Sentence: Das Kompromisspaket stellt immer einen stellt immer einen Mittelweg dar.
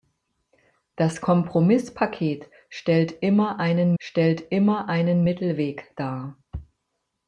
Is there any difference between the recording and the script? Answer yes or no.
no